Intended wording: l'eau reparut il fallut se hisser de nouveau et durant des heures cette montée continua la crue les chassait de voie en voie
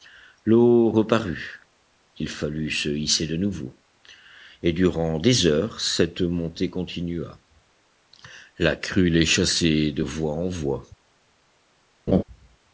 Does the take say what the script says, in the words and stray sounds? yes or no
no